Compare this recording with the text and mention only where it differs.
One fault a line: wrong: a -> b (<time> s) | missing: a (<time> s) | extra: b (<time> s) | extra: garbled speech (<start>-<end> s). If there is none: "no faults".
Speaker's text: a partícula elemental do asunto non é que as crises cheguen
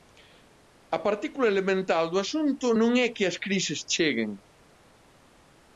no faults